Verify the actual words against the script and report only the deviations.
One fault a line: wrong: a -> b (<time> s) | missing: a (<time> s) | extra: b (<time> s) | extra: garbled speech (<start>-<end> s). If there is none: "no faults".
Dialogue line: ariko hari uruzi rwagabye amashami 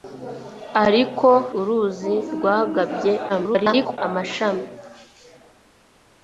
missing: hari (1.3 s)
extra: garbled speech (3.3-4.0 s)